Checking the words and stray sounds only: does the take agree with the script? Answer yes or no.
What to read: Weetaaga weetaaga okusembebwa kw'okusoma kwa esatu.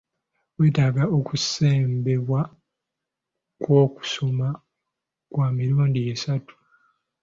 no